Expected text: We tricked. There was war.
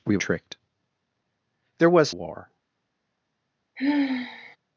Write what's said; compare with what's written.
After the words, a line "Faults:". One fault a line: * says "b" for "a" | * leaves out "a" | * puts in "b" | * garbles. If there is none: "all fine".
We tricked. There was war.
Faults:
all fine